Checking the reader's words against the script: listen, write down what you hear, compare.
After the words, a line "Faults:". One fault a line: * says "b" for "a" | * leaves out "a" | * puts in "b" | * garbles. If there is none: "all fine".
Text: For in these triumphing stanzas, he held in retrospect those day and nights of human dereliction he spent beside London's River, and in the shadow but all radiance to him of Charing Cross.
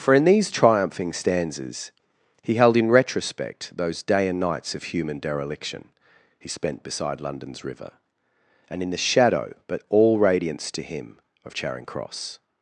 For in these triumphing stanzas, he held in retrospect those day and nights of human dereliction he spent beside London's River, and in the shadow but all radiance to him of Charing Cross.
Faults:
all fine